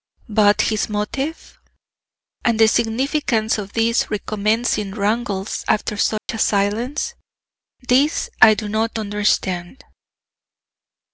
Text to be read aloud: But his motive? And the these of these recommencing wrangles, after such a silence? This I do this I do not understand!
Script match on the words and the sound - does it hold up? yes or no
no